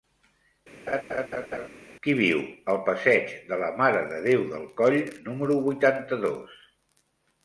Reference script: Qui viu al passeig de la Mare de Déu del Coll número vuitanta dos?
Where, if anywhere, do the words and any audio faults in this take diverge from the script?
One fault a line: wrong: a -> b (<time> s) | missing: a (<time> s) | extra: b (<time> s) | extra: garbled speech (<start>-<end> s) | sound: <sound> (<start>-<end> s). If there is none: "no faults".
sound: laugh (0.9-1.7 s)